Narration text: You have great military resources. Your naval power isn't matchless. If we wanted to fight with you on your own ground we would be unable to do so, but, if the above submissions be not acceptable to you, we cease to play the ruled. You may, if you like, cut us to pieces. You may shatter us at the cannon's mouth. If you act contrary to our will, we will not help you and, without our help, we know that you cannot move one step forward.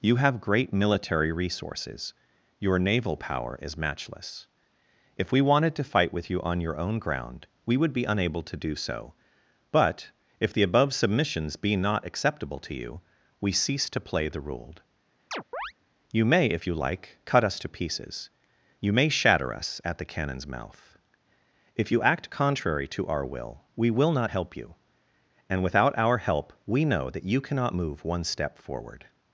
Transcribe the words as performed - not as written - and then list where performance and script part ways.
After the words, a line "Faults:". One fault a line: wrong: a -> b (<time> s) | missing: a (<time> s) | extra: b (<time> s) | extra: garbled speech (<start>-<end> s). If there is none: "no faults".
You have great military resources. Your naval power is matchless. If we wanted to fight with you on your own ground we would be unable to do so, but, if the above submissions be not acceptable to you, we cease to play the ruled. You may, if you like, cut us to pieces. You may shatter us at the cannon's mouth. If you act contrary to our will, we will not help you and, without our help, we know that you cannot move one step forward.
Faults:
wrong: isn't -> is (3.6 s)